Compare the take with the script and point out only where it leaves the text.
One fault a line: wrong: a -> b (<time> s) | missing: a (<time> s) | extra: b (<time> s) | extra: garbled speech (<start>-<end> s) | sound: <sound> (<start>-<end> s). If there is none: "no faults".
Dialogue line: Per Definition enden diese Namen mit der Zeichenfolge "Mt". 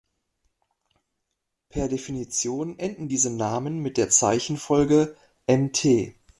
no faults